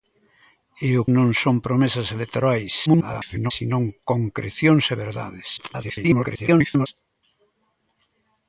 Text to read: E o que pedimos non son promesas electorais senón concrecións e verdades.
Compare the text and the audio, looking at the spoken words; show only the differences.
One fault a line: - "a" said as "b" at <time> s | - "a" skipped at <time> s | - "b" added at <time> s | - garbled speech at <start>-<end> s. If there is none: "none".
- "que pedimos" skipped at 1.0 s
- garbled speech at 2.9-3.5 s
- garbled speech at 5.6-6.9 s